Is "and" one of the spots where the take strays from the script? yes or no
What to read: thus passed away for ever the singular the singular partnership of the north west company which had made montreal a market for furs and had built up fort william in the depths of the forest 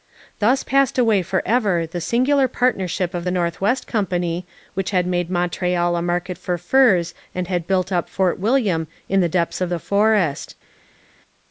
no